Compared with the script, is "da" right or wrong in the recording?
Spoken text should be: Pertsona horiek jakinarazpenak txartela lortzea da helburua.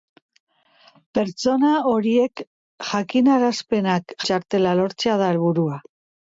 right